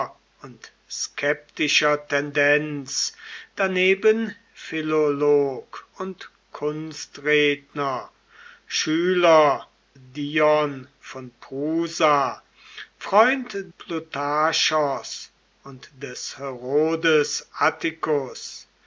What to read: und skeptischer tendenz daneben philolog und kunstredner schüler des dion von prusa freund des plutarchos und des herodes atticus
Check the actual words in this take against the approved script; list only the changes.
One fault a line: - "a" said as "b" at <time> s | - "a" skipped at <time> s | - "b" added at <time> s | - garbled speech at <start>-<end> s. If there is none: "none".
- "des" skipped at 9.7 s
- "des" skipped at 13.6 s